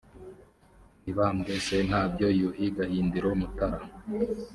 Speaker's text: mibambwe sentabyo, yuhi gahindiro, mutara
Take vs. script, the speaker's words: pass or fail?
pass